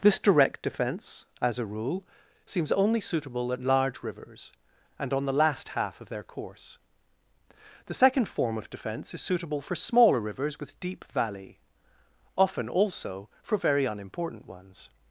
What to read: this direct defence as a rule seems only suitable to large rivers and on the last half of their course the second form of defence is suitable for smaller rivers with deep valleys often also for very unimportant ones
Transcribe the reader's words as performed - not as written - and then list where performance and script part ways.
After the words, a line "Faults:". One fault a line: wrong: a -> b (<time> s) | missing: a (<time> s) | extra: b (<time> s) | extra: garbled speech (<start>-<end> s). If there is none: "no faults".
this direct defence as a rule seems only suitable at large rivers and on the last half of their course the second form of defence is suitable for smaller rivers with deep valley often also for very unimportant ones
Faults:
wrong: to -> at (3.5 s)
wrong: valleys -> valley (11.1 s)